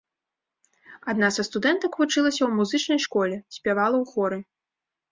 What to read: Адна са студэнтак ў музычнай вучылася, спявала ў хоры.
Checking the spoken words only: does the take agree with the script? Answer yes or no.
no